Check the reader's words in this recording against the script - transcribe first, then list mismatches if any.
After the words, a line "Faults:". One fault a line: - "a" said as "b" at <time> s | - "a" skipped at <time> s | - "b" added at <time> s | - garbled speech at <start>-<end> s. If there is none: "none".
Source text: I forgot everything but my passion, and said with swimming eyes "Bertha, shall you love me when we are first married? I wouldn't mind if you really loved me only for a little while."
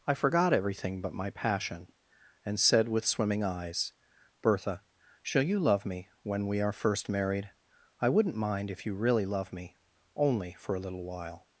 I forgot everything but my passion, and said with swimming eyes "Bertha, shall you love me when we are first married? I wouldn't mind if you really love me only for a little while."
Faults:
- "loved" said as "love" at 9.3 s